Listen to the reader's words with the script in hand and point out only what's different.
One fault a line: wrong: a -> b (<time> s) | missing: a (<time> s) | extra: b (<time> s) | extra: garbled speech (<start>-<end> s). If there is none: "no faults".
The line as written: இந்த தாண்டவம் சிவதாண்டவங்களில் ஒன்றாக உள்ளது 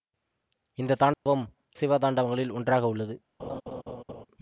no faults